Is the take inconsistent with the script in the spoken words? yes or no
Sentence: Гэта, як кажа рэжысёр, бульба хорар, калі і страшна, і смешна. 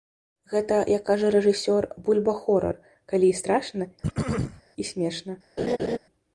no